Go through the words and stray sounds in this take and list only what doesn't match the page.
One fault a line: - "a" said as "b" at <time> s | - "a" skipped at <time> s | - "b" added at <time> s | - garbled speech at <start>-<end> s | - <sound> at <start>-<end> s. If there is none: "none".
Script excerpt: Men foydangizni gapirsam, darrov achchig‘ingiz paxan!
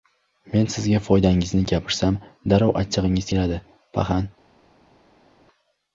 - "sizga" added at 0.8 s
- "keladi" added at 3.3 s